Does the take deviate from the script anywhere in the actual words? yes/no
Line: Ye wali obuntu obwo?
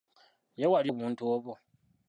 no